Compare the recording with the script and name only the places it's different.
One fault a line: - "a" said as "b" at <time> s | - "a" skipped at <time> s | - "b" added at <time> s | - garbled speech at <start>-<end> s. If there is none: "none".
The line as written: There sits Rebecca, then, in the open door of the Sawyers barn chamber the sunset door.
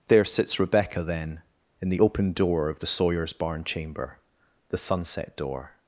none